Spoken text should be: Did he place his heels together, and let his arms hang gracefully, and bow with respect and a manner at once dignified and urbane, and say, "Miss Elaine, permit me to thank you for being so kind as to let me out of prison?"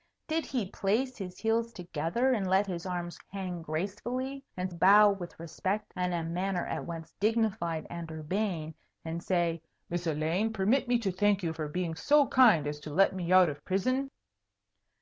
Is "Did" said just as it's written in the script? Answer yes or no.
yes